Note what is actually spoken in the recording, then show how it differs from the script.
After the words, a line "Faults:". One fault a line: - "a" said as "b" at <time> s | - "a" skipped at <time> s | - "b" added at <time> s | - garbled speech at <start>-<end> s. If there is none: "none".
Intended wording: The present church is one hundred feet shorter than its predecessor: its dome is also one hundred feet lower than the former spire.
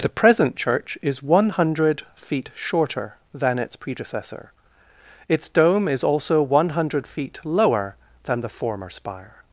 The present church is one hundred feet shorter than its predecessor: its dome is also one hundred feet lower than the former spire.
Faults:
none